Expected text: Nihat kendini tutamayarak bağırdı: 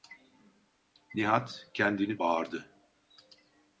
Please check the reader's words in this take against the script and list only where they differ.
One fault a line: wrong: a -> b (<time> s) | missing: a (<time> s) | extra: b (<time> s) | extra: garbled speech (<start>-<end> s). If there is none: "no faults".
missing: tutamayarak (2.2 s)